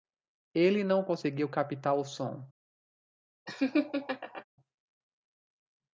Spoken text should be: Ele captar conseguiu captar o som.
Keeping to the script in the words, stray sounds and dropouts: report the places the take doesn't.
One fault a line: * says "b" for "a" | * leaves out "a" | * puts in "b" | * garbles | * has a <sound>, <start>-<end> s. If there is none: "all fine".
* says "não" for "captar"
* has a laugh, 3.5-4.4 s